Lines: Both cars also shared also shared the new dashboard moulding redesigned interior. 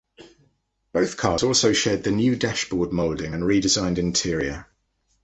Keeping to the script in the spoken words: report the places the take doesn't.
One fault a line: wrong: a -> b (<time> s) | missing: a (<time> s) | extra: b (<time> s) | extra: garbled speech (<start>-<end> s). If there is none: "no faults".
missing: also shared (2.0 s)
extra: and (3.3 s)